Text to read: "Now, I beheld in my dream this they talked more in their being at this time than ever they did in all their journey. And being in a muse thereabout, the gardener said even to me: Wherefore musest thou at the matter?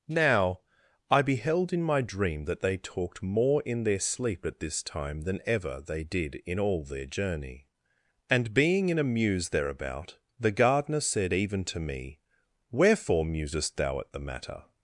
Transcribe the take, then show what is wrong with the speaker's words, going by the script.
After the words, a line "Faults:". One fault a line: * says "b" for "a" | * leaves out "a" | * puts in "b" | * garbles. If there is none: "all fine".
"Now, I beheld in my dream that they talked more in their sleep at this time than ever they did in all their journey. And being in a muse thereabout, the gardener said even to me: Wherefore musest thou at the matter?
Faults:
* says "that" for "this"
* says "sleep" for "being"